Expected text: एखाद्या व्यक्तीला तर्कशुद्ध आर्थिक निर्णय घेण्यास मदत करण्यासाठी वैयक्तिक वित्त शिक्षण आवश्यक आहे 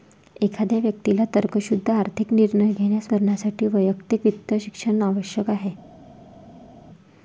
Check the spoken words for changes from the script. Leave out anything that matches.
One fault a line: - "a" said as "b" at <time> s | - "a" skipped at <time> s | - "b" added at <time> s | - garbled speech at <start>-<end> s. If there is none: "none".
- "मदत" skipped at 3.1 s